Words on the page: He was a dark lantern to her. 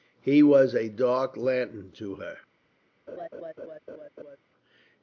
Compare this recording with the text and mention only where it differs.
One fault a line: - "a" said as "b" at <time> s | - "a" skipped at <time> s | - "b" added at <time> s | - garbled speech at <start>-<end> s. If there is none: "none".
none